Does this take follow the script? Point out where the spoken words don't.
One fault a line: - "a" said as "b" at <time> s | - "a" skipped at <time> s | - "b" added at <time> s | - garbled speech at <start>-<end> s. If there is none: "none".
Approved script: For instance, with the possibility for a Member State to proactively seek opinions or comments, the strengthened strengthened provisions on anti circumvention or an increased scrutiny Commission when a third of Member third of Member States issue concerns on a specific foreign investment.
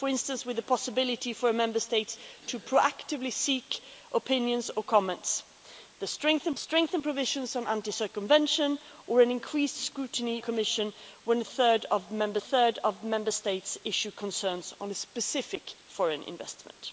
none